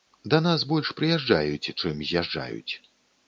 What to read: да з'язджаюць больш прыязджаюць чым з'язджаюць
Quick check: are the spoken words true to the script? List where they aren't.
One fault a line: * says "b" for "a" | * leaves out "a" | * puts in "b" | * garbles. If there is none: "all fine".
* says "нас" for "з'язджаюць"